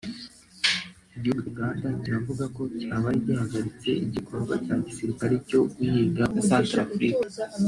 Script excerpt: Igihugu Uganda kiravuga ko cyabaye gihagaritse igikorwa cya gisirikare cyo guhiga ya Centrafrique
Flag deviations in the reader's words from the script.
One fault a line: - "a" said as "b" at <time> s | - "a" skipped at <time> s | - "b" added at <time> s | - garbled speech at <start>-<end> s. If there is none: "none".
none